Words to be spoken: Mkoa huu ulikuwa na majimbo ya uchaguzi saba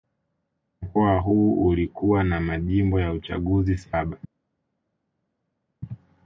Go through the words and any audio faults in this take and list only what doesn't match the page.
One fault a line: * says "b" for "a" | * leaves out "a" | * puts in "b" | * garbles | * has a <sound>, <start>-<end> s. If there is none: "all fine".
all fine